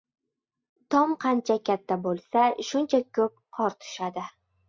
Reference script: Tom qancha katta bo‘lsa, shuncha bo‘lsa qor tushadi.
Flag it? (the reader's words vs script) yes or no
yes